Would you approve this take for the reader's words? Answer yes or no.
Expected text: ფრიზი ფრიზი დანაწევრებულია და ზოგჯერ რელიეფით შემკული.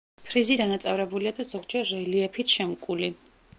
no